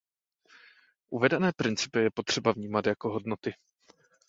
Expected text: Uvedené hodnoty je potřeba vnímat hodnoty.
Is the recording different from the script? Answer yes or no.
yes